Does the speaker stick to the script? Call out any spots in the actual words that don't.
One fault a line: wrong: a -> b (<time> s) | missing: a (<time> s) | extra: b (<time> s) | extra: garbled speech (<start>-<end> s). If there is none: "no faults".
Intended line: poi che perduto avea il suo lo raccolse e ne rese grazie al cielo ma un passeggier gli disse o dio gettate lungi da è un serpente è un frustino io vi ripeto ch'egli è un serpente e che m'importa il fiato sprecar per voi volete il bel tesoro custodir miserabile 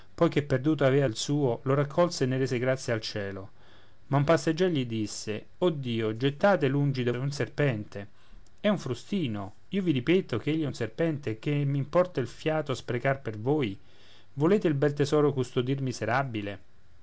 no faults